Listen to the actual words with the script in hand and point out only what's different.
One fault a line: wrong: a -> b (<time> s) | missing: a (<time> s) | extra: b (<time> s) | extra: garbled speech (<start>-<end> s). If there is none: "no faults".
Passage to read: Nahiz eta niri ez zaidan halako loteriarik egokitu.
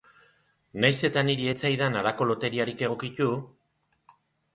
no faults